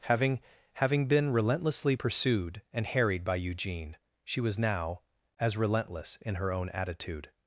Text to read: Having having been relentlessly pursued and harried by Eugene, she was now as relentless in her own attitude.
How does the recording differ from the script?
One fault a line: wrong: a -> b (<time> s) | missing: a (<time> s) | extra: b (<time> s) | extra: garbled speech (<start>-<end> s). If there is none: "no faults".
no faults